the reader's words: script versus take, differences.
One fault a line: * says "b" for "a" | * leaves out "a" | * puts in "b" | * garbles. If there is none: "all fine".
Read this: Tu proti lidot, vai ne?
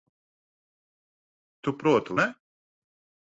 * leaves out "lidot vai"